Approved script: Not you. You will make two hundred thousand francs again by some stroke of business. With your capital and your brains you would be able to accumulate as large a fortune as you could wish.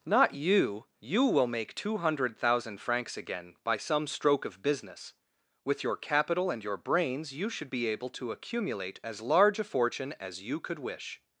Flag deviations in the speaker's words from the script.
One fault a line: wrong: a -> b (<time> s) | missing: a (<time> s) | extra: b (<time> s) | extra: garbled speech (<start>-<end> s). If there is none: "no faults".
wrong: would -> should (7.5 s)